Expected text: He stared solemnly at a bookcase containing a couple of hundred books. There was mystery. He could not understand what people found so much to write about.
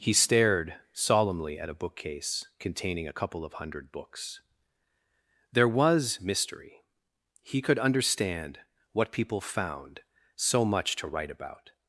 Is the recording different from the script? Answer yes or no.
yes